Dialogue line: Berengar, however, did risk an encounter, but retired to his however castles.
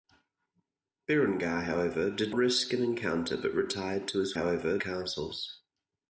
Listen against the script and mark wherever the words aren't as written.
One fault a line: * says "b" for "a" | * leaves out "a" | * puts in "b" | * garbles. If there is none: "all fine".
all fine